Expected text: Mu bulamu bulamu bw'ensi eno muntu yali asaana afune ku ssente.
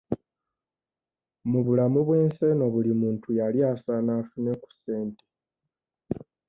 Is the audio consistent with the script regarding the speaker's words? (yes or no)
no